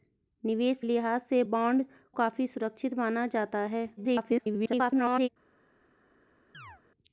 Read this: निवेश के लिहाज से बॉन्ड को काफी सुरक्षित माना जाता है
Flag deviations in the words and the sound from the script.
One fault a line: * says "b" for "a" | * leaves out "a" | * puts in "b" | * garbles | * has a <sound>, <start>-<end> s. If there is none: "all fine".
* leaves out "के"
* leaves out "को"
* garbles
* has a chirp, 6.5-6.8 s